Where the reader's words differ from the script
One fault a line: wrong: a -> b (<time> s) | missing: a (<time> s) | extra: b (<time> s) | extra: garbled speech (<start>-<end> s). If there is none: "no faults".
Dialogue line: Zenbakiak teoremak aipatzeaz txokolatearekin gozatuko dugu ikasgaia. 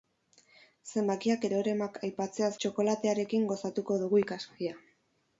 no faults